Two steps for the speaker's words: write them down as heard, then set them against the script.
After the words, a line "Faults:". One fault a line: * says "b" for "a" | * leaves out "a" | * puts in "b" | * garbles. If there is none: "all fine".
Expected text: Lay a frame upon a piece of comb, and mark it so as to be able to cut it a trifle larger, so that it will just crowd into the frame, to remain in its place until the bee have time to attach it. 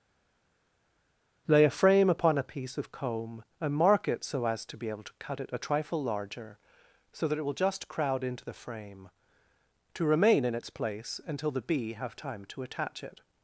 Lay a frame upon a piece of comb, and mark it so as to be able to cut it a trifle larger, so that it will just crowd into the frame, to remain in its place until the bee have time to attach it.
Faults:
all fine